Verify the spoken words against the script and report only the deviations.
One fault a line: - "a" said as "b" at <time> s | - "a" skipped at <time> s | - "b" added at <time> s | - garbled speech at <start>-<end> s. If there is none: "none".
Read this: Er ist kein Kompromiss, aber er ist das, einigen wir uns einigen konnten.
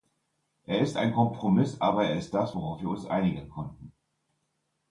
- "kein" said as "ein" at 1.0 s
- "einigen" said as "worauf" at 2.5 s